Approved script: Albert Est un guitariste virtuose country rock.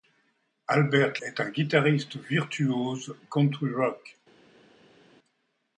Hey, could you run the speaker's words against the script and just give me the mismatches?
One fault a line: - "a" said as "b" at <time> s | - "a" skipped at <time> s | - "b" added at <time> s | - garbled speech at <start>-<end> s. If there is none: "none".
none